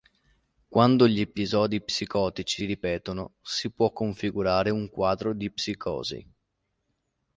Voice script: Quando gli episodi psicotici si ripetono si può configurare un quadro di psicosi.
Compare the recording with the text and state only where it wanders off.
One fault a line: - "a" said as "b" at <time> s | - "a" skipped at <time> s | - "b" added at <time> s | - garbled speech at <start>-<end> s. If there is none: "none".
- "si" skipped at 2.6 s